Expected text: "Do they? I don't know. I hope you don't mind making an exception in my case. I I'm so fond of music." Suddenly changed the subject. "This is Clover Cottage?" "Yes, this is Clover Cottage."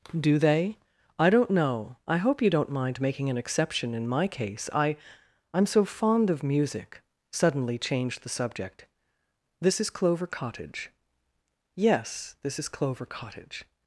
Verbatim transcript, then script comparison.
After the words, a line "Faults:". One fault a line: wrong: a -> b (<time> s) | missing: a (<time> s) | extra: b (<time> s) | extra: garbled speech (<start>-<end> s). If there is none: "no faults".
"Do they? I don't know. I hope you don't mind making an exception in my case. I I'm so fond of music." Suddenly changed the subject. "This is Clover Cottage?" "Yes, this is Clover Cottage."
Faults:
no faults